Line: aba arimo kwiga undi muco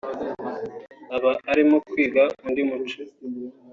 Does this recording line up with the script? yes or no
yes